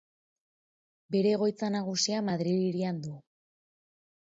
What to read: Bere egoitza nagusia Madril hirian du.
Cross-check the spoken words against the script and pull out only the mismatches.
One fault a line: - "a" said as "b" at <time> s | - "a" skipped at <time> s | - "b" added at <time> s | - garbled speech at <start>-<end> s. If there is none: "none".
none